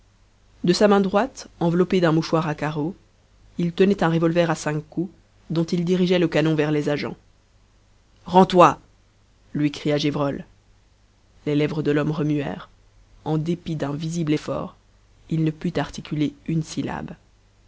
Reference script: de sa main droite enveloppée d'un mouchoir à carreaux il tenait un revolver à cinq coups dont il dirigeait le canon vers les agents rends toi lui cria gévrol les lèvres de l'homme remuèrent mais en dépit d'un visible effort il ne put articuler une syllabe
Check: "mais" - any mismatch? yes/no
yes